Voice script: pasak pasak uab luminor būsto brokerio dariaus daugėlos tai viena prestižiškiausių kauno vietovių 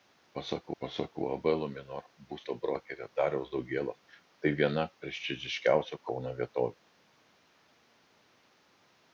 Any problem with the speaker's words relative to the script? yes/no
no